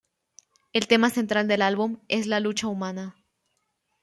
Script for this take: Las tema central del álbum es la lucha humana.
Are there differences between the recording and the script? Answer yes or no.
yes